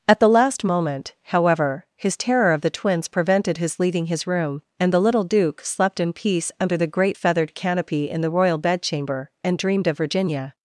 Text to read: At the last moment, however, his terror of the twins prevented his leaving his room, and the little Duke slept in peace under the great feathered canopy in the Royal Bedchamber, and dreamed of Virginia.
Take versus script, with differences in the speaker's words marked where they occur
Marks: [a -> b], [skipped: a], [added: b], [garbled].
At the last moment, however, his terror of the twins prevented his leaving his room, and the little Duke slept in peace under the great feathered canopy in the Royal Bedchamber, and dreamed of Virginia.